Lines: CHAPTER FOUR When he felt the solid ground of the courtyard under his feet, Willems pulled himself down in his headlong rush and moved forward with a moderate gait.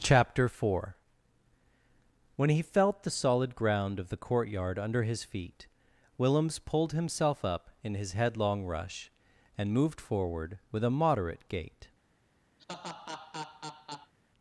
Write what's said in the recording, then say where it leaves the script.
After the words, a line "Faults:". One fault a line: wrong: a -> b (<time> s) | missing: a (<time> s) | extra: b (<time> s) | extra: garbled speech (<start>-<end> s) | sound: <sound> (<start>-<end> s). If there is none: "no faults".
CHAPTER FOUR When he felt the solid ground of the courtyard under his feet, Willems pulled himself up in his headlong rush and moved forward with a moderate gait.
Faults:
wrong: down -> up (7.5 s)
sound: laugh (12.6-14.1 s)